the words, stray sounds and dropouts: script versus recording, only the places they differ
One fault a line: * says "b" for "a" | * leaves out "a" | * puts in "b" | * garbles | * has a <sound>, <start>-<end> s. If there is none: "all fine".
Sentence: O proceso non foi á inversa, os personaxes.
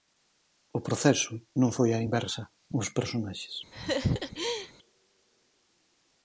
* has a laugh, 3.7-4.7 s